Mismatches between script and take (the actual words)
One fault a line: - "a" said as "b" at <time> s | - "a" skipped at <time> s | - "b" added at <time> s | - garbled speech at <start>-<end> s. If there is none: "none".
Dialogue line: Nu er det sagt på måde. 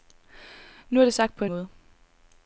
none